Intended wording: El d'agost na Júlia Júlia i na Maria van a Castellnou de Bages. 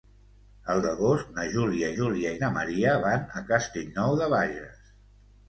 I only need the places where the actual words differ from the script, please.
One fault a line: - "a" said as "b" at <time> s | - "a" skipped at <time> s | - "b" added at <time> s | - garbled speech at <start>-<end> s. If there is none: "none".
none